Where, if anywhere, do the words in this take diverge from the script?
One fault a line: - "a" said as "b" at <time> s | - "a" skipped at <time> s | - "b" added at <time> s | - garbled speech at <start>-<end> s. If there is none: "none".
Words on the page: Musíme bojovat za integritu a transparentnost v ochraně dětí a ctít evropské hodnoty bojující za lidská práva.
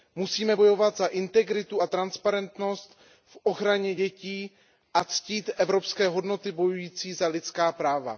none